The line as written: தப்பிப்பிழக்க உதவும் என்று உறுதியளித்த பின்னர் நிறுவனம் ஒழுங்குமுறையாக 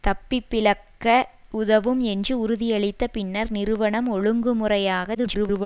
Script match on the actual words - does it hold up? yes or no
no